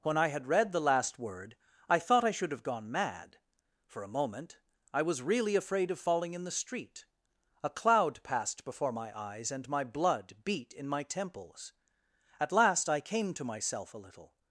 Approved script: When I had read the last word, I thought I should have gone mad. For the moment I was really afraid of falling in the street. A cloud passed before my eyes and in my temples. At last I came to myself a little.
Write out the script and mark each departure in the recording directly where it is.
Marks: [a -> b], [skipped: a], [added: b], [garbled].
When I had read the last word, I thought I should have gone mad. For [the -> a] moment I was really afraid of falling in the street. A cloud passed before my eyes and [added: my blood beat] in my temples. At last I came to myself a little.